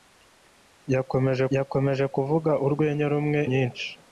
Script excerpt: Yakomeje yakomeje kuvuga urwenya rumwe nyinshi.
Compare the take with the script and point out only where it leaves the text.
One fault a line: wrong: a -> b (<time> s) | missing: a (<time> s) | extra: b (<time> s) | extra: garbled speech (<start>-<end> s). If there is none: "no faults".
no faults